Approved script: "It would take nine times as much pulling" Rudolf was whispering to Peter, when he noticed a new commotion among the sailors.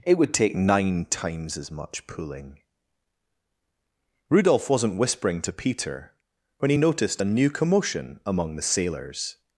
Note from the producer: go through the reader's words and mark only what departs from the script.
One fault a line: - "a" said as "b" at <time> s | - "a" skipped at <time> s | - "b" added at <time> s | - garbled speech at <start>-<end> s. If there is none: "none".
- "was" said as "wasn't" at 4.7 s